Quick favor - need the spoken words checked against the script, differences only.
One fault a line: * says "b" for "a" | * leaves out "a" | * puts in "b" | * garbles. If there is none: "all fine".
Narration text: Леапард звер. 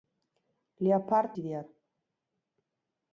all fine